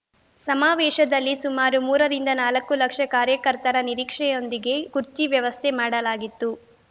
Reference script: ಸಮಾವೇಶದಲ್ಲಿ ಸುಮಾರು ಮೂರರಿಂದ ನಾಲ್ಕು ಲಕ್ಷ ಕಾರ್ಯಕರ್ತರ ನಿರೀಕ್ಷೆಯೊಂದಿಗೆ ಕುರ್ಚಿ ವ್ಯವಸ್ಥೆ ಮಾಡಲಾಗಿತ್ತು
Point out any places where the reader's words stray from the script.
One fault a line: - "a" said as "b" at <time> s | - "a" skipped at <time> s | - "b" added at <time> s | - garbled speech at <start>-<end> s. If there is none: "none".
none